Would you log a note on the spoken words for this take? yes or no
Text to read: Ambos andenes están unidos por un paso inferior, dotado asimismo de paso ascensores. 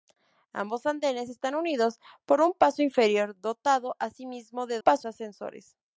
no